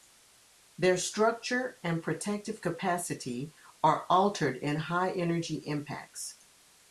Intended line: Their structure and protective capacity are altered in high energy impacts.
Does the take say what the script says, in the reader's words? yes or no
yes